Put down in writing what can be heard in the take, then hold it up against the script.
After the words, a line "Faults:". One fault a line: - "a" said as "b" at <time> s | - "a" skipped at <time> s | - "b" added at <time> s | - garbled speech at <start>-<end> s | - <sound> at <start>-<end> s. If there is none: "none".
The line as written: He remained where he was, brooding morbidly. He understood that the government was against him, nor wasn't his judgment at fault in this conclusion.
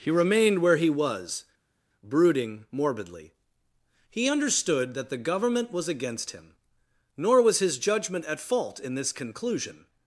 He remained where he was, brooding morbidly. He understood that the government was against him, nor was his judgment at fault in this conclusion.
Faults:
- "wasn't" said as "was" at 7.4 s